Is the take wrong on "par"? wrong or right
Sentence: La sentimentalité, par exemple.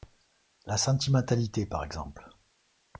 right